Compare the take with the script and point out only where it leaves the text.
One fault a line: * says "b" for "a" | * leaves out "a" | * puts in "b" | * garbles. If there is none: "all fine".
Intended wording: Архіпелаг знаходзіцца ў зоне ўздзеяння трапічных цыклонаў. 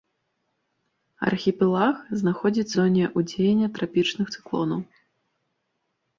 * leaves out "ў"